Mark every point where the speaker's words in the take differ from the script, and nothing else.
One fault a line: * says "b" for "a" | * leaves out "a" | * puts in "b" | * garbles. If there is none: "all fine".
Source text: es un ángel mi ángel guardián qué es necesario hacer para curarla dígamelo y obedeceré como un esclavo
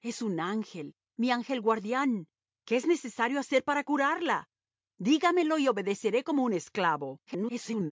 * garbles